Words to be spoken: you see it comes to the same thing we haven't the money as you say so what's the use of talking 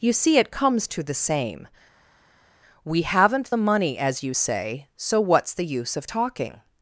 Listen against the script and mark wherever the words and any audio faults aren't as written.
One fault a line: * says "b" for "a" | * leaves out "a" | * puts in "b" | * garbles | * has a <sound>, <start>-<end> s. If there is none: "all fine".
* leaves out "thing"